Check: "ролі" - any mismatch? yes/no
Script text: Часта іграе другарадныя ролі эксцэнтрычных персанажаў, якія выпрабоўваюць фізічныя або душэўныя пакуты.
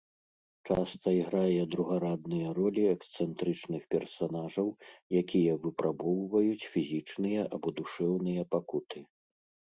no